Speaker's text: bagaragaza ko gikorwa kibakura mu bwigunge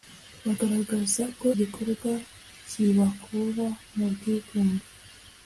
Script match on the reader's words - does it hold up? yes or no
yes